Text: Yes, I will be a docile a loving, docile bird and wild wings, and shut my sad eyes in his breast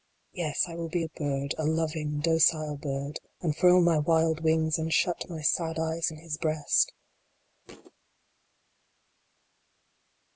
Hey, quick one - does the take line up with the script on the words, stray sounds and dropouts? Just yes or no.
no